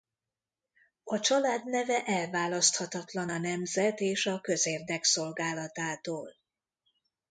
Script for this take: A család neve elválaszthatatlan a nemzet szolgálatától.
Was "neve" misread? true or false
false